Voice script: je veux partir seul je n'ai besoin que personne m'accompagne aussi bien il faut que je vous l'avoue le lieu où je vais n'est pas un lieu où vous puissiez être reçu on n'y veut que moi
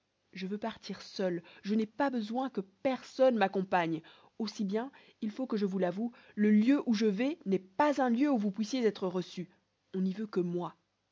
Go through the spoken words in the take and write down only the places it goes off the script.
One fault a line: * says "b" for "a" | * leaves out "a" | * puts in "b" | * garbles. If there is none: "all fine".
* puts in "pas"